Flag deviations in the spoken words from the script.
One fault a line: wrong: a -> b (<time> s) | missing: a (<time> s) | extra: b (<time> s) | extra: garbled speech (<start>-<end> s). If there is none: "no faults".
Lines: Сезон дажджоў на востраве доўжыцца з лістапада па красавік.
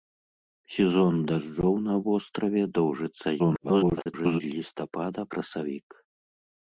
extra: garbled speech (3.4-4.4 s)
missing: па (5.2 s)